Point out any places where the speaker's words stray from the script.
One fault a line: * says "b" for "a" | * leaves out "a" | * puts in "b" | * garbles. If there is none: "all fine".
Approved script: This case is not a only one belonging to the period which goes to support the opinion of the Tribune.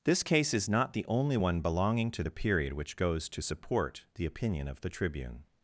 * says "the" for "a"